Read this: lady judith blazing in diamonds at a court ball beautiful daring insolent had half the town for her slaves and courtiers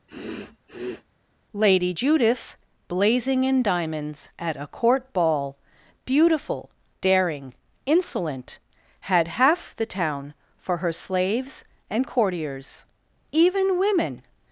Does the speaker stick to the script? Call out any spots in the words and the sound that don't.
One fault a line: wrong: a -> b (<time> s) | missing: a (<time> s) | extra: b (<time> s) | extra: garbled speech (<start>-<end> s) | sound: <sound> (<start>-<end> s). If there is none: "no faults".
sound: sniff (0.1-1.0 s)
extra: even women (13.3 s)